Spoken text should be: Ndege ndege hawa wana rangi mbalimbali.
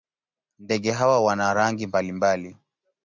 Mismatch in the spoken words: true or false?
true